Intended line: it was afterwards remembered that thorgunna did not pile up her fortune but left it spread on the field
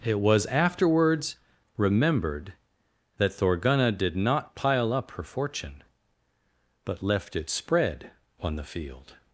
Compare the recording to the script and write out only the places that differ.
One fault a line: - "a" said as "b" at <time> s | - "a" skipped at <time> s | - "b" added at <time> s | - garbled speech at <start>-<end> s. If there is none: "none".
none